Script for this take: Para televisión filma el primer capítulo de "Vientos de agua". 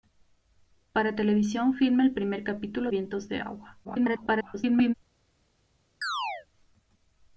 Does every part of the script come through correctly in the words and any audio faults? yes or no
no